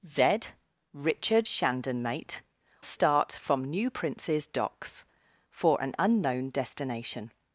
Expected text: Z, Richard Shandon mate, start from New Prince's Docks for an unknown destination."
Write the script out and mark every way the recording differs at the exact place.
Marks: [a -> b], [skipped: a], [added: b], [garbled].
Z, Richard Shandon mate, start from New Prince's Docks for an unknown destination."